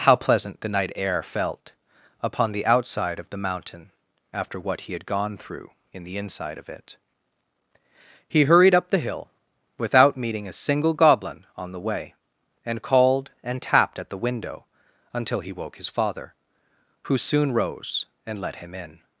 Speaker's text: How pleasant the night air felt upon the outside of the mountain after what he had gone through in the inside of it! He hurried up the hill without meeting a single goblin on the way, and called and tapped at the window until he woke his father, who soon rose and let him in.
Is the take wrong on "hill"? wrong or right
right